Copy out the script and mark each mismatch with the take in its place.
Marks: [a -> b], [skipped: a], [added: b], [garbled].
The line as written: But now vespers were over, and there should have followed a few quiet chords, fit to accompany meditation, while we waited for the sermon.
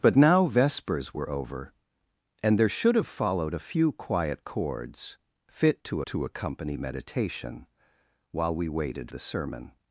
But now vespers were over, and there should have followed a few quiet chords, fit to [added: to] accompany meditation, while we waited [skipped: for] the sermon.